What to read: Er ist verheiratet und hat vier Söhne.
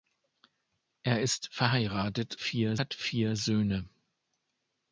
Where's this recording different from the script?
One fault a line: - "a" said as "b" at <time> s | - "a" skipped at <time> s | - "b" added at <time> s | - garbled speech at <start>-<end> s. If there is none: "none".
- "und" said as "vier" at 2.3 s